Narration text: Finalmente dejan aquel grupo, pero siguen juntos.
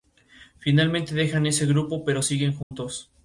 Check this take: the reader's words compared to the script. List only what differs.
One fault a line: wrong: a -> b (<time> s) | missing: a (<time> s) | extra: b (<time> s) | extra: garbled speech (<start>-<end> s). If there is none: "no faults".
wrong: aquel -> ese (1.4 s)